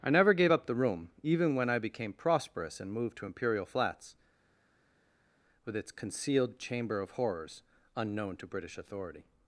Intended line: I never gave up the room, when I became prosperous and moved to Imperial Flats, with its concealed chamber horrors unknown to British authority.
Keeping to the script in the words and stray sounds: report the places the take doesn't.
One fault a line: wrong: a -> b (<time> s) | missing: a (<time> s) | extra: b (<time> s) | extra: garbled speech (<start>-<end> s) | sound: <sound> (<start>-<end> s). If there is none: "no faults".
extra: even (1.2 s)
extra: of (7.0 s)